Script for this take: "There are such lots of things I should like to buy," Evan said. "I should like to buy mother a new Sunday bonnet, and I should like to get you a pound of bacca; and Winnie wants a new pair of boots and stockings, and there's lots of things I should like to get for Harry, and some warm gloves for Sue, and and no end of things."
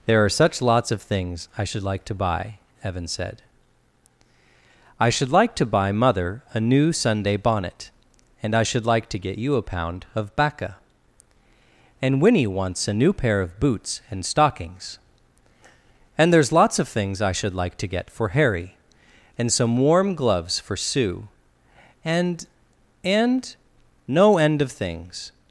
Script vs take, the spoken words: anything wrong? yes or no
no